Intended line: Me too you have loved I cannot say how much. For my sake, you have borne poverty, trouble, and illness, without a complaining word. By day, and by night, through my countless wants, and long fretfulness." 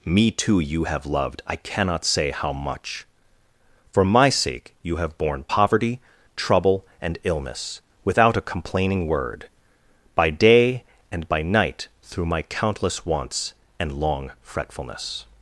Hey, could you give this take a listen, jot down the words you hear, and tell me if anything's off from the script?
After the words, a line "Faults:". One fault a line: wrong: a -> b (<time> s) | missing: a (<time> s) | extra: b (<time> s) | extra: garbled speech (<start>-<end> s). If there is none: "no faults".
Me too you have loved I cannot say how much. For my sake, you have borne poverty, trouble, and illness, without a complaining word. By day, and by night, through my countless wants, and long fretfulness."
Faults:
no faults